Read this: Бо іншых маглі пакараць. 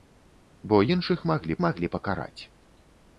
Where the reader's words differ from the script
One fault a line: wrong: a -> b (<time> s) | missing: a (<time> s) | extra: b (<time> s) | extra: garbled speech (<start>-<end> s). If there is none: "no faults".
extra: маглі (1.7 s)